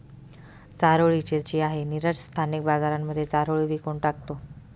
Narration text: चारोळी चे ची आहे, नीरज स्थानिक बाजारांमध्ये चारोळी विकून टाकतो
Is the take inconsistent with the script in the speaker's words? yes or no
no